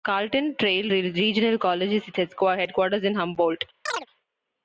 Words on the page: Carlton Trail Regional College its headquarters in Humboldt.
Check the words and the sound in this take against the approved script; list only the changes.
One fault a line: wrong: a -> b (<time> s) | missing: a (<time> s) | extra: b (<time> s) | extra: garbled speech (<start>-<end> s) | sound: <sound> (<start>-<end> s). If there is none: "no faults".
extra: has (1.9 s)
sound: chirp (3.9-4.1 s)